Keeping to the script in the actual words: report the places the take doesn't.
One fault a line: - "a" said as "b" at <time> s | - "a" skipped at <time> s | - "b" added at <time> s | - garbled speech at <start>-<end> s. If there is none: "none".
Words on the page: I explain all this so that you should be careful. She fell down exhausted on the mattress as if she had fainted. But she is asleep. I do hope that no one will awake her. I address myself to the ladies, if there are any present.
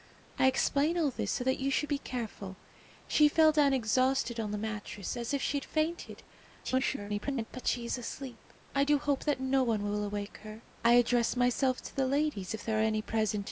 - garbled speech at 6.6-7.4 s